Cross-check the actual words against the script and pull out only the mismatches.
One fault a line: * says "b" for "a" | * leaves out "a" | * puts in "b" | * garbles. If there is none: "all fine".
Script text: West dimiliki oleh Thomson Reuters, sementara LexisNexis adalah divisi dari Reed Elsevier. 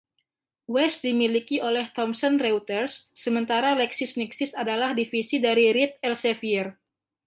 all fine